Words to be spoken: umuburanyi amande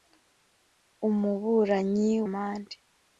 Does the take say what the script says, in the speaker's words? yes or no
yes